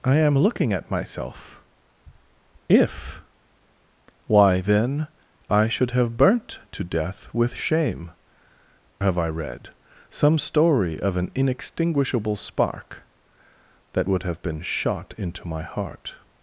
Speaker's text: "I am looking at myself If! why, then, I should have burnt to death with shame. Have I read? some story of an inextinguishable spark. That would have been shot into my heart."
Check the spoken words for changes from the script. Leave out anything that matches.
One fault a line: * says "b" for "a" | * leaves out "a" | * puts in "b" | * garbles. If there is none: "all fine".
all fine